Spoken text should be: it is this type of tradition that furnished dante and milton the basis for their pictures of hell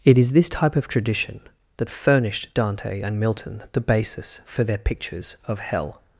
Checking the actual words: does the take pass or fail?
pass